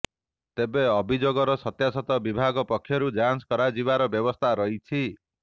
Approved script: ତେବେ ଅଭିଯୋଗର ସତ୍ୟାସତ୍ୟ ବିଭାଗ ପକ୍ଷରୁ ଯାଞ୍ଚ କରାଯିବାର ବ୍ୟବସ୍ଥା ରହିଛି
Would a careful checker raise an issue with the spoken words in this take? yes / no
no